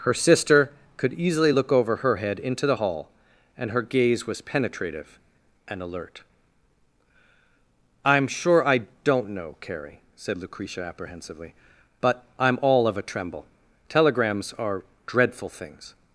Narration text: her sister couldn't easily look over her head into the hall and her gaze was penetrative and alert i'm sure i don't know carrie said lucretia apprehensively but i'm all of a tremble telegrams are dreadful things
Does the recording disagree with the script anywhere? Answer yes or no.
yes